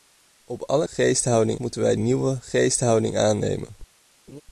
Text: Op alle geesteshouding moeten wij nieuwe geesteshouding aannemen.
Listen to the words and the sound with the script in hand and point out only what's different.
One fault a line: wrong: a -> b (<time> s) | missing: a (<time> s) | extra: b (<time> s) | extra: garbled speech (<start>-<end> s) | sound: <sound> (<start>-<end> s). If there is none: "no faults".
sound: laugh (4.3-4.4 s)